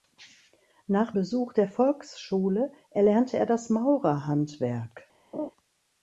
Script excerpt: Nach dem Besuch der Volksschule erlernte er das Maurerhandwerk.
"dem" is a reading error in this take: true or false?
true